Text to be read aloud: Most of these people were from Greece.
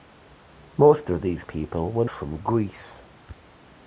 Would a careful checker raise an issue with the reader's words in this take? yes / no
no